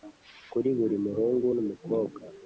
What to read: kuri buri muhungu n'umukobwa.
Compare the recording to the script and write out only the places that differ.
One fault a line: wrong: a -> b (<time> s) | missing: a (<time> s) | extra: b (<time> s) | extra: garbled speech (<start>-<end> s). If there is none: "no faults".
no faults